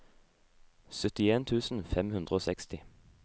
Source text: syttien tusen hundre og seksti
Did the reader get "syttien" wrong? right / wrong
right